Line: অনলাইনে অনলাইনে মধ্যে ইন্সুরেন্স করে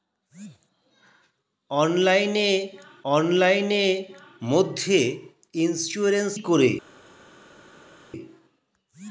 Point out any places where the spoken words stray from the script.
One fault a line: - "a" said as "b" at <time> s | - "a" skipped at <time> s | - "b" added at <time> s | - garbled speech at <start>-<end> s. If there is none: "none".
none